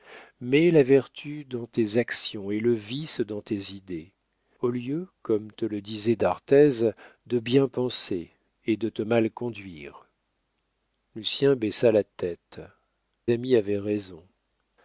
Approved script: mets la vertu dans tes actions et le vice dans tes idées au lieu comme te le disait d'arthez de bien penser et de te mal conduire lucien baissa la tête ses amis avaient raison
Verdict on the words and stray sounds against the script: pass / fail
fail